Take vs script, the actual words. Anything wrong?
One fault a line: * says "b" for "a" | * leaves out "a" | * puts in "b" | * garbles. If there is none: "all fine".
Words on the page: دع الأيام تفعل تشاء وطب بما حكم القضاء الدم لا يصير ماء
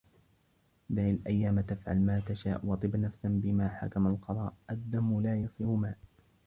* puts in "ما"
* puts in "نفسا"